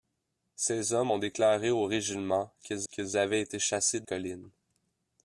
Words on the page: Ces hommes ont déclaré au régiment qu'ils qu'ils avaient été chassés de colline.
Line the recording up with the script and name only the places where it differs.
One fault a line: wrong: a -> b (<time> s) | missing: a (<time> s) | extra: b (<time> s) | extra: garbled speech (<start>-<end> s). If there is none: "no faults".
no faults